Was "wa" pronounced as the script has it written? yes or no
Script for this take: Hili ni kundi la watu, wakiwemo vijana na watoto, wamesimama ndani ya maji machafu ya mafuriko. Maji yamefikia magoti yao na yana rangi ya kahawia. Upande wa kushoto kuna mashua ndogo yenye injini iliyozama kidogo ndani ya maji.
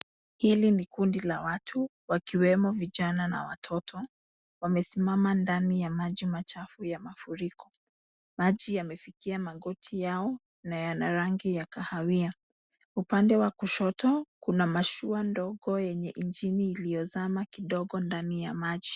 yes